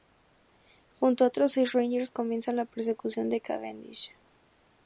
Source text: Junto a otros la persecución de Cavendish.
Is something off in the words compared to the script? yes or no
yes